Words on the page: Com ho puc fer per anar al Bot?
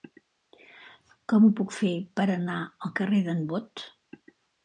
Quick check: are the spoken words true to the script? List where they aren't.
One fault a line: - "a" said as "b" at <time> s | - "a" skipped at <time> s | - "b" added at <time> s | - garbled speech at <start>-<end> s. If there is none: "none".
- "carrer d'en" added at 3.0 s